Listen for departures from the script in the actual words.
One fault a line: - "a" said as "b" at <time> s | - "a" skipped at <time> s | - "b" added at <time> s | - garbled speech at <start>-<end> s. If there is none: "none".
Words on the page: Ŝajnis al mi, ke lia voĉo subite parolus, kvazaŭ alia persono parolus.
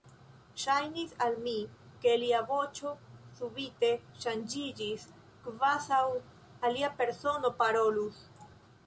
- "parolus" said as "ŝanĝiĝis" at 4.2 s